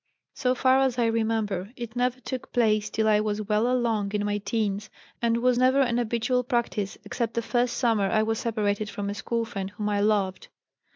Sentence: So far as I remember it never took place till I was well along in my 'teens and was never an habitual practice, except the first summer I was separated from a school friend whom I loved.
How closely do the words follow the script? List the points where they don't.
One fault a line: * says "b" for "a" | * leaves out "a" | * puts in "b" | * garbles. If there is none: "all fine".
all fine